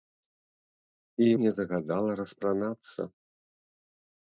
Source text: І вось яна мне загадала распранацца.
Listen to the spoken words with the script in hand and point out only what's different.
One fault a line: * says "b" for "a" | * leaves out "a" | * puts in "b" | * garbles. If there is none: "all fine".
* leaves out "вось яна"